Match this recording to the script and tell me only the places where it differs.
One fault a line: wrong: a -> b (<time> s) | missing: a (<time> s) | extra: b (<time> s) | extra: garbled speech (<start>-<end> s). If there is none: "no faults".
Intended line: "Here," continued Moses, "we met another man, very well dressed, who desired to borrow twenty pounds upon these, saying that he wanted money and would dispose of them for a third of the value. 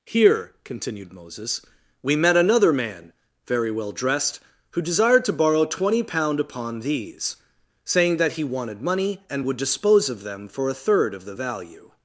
wrong: pounds -> pound (6.0 s)